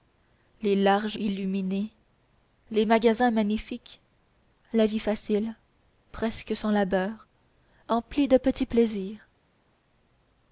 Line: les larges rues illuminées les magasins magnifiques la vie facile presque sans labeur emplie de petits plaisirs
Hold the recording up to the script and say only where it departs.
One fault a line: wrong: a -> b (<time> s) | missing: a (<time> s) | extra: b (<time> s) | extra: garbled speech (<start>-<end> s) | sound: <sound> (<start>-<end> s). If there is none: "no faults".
missing: rues (1.2 s)